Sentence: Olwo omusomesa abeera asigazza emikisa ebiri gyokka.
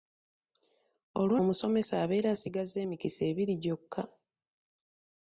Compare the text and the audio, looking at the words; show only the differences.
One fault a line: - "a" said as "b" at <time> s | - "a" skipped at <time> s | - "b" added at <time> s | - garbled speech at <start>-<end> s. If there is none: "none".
none